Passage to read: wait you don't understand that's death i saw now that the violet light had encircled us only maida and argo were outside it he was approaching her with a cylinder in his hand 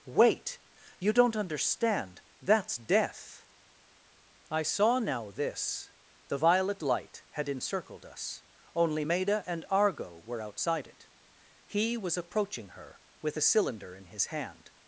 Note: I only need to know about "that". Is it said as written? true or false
false